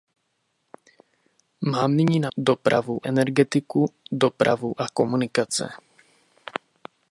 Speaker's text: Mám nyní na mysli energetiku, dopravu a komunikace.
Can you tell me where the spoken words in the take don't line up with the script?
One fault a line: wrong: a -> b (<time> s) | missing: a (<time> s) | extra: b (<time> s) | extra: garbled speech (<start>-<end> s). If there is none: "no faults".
wrong: mysli -> dopravu (2.4 s)